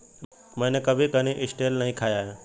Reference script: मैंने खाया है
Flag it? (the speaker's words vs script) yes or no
yes